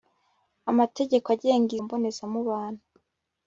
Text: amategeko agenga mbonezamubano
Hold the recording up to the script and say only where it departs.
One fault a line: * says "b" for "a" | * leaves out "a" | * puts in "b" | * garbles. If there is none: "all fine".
all fine